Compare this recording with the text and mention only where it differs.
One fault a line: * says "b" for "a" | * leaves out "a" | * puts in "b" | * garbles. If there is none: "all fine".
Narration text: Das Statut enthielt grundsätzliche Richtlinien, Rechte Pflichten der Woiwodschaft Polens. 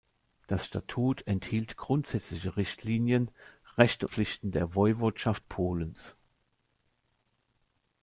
all fine